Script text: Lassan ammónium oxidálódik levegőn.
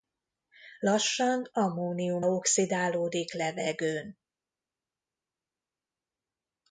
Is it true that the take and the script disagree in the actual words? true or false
false